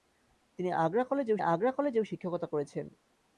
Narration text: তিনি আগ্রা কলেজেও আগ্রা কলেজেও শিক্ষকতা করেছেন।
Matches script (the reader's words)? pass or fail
pass